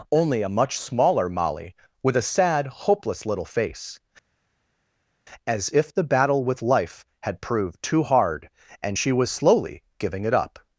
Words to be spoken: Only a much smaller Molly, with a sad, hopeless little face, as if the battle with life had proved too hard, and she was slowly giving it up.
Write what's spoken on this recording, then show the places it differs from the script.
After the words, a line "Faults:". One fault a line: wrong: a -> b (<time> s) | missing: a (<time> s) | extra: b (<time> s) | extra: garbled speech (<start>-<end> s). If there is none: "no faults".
Only a much smaller Molly, with a sad, hopeless little face, as if the battle with life had proved too hard, and she was slowly giving it up.
Faults:
no faults